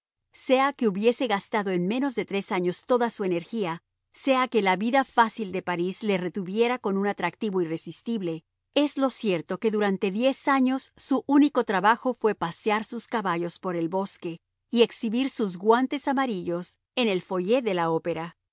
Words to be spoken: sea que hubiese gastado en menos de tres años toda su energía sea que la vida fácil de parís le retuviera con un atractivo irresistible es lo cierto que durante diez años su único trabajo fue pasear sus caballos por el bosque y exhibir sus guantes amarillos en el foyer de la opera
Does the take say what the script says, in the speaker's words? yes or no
yes